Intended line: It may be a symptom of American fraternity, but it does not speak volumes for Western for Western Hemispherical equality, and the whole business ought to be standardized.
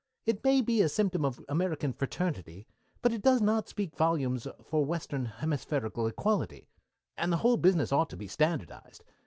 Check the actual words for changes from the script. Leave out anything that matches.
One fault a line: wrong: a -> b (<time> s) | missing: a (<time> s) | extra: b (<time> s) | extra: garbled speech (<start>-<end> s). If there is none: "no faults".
missing: for Western (5.2 s)